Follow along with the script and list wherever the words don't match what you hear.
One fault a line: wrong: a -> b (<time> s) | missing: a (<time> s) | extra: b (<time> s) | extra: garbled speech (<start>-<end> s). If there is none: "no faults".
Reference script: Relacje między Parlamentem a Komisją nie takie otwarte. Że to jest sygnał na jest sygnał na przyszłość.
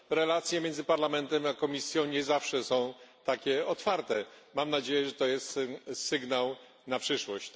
extra: zawsze są (2.2 s)
extra: Mam nadzieję (4.5 s)
missing: jest sygnał na (7.0 s)